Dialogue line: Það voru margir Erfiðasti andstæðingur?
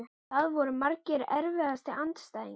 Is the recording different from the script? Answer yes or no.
no